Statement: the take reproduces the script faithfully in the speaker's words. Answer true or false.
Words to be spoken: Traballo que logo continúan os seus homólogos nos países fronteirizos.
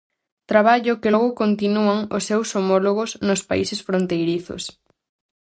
true